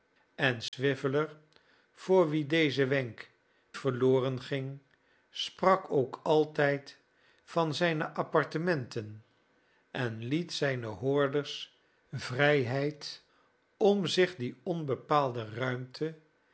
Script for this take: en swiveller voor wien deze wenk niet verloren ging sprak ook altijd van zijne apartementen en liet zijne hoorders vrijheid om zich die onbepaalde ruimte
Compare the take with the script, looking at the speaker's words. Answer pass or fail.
fail